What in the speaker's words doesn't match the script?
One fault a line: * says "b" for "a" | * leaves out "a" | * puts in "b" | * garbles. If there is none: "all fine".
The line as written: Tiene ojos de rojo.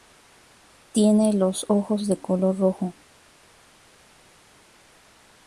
* puts in "los"
* puts in "color"